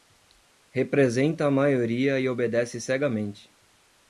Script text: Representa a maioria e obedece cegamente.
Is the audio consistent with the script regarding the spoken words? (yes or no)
yes